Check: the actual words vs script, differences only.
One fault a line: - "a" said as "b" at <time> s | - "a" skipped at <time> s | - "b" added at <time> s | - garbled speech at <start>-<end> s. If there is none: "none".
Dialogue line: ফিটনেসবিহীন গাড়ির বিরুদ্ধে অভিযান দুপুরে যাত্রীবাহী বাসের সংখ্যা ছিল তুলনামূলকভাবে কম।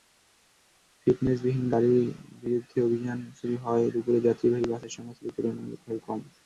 - "শুরু হওয়ায়" added at 3.4 s